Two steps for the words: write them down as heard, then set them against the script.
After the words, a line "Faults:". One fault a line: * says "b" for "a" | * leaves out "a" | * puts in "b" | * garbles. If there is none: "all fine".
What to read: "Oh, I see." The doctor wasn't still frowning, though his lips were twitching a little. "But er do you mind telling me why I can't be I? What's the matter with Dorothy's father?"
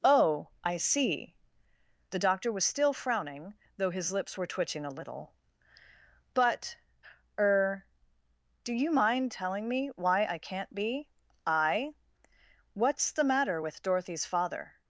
"Oh, I see." The doctor was still frowning, though his lips were twitching a little. "But er do you mind telling me why I can't be I? What's the matter with Dorothy's father?"
Faults:
* says "was" for "wasn't"